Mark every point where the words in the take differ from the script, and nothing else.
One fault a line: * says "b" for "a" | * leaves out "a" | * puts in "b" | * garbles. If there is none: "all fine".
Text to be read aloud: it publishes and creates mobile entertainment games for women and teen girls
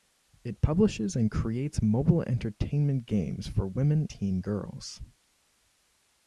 * leaves out "and"